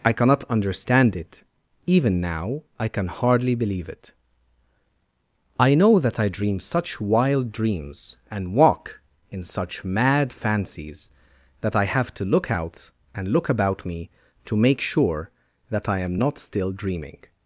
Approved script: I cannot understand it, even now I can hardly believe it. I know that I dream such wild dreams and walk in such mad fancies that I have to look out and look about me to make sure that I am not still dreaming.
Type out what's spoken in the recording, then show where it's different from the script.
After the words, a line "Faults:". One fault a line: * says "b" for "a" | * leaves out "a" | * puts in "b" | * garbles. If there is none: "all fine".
I cannot understand it, even now I can hardly believe it. I know that I dream such wild dreams and walk in such mad fancies that I have to look out and look about me to make sure that I am not still dreaming.
Faults:
all fine